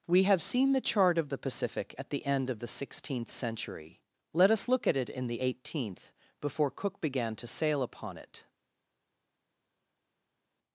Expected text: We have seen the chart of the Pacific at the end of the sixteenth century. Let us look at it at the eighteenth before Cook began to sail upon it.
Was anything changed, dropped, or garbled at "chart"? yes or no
no